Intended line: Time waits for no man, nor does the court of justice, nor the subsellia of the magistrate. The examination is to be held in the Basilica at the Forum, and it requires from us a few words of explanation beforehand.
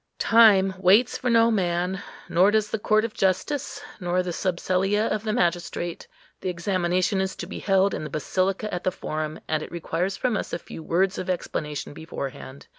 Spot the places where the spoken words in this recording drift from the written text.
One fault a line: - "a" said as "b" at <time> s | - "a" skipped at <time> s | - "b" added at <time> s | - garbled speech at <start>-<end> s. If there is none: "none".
none